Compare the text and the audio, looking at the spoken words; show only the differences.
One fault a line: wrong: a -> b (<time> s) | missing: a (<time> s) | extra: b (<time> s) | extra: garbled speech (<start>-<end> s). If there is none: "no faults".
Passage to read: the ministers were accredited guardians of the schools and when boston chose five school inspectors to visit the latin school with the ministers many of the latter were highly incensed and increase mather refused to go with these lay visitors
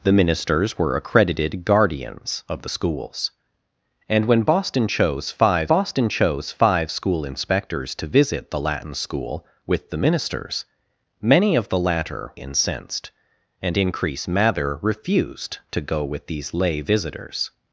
extra: boston chose five (5.7 s)
missing: were highly (12.3 s)